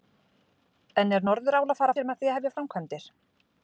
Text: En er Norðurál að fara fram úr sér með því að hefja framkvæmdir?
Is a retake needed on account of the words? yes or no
yes